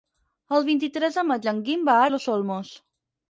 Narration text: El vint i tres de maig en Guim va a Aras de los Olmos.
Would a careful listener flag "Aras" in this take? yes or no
yes